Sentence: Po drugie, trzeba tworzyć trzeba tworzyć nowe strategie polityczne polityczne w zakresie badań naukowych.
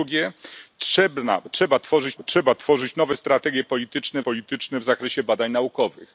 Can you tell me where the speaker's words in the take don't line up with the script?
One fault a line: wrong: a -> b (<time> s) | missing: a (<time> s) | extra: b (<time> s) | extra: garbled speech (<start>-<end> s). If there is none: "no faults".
no faults